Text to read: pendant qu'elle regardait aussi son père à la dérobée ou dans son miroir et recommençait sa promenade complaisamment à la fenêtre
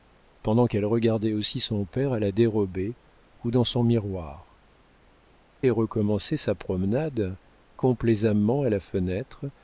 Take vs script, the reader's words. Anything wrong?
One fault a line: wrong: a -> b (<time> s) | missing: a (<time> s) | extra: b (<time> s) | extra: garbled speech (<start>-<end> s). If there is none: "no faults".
no faults